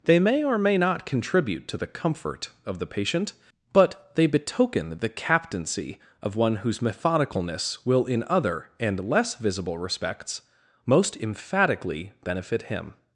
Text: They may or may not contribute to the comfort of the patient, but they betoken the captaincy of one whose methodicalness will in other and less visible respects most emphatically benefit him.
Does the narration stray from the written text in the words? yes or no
no